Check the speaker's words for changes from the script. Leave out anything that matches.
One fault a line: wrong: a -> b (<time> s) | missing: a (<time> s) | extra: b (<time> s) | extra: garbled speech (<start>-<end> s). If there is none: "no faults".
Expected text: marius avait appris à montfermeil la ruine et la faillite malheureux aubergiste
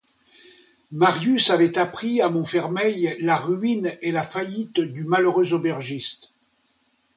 extra: du (4.8 s)